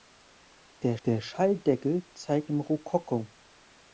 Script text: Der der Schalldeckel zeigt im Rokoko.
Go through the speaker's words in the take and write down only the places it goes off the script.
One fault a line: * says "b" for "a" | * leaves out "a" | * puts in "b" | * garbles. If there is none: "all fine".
all fine